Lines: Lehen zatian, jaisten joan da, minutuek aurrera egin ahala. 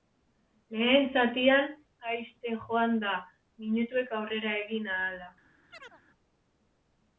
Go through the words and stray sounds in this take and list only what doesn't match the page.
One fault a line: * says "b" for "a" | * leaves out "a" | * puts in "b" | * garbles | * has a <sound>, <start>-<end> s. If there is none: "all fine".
* has a chirp, 5.7-6.0 s